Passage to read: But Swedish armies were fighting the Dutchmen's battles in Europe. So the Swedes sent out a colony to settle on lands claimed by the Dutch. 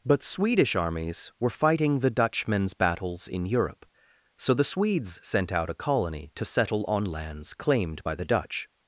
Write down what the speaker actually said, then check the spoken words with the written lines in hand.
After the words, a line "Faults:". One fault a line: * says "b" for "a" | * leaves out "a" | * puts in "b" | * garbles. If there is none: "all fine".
But Swedish armies were fighting the Dutchmen's battles in Europe. So the Swedes sent out a colony to settle on lands claimed by the Dutch.
Faults:
all fine